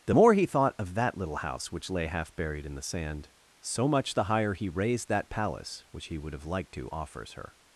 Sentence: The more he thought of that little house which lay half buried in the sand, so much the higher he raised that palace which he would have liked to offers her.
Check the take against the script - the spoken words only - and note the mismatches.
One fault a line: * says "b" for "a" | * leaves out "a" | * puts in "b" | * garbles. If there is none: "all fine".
all fine